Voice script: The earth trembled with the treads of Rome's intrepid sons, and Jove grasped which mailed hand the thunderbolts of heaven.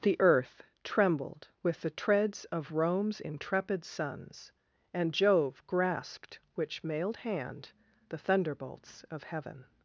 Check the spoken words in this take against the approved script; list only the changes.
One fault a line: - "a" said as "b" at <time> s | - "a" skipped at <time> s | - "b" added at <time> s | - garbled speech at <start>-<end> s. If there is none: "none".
none